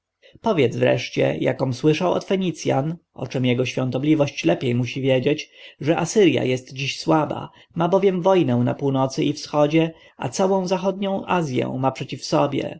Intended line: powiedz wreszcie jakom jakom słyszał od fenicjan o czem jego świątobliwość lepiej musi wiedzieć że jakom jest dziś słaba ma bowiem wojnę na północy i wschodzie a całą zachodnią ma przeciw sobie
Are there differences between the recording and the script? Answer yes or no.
yes